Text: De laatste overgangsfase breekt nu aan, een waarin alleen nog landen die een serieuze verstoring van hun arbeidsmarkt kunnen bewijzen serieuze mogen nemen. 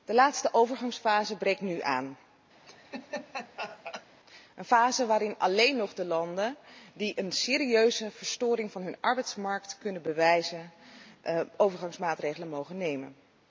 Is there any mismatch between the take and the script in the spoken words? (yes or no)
yes